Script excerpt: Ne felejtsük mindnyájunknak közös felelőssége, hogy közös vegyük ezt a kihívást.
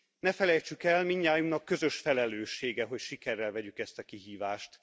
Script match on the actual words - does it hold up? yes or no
no